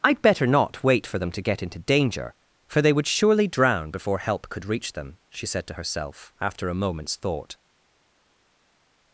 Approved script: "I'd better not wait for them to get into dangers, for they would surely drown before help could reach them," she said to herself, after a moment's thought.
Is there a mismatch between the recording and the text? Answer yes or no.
yes